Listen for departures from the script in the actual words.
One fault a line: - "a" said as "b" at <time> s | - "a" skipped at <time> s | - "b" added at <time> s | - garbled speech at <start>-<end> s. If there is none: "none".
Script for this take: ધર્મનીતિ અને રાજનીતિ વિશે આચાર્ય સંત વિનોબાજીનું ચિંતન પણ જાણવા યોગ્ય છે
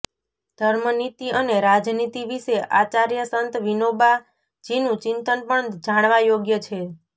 none